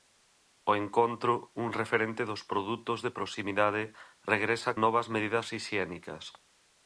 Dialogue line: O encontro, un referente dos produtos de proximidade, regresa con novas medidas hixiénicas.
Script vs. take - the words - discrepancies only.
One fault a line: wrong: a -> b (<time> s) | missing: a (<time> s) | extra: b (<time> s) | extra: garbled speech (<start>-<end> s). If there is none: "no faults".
missing: con (4.7 s)